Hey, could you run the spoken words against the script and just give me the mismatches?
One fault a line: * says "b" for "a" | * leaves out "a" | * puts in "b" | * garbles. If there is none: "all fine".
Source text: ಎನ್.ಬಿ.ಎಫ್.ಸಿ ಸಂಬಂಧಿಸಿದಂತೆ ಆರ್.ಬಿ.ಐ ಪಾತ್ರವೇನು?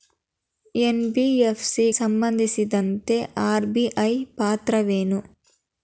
all fine